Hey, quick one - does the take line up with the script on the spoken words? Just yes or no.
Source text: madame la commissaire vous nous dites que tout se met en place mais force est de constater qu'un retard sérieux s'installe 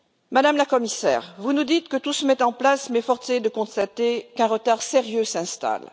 yes